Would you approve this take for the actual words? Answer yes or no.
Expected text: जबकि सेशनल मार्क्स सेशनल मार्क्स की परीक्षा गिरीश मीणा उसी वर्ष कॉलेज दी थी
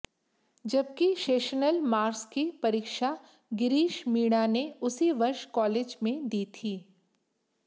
no